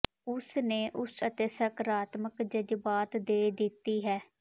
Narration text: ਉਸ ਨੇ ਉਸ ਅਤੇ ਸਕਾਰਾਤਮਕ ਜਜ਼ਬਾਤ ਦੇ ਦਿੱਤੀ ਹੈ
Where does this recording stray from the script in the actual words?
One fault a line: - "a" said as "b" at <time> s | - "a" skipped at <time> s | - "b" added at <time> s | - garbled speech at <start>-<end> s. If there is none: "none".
none